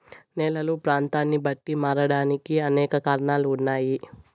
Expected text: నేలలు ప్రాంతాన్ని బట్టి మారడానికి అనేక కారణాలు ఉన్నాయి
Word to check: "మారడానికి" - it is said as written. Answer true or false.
true